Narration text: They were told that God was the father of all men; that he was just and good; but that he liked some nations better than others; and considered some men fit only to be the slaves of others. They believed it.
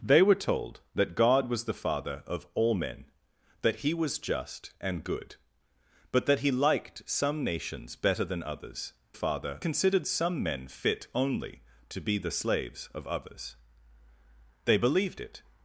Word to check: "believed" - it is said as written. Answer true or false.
true